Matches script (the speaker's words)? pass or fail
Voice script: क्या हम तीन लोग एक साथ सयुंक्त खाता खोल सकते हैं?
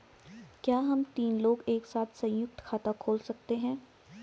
pass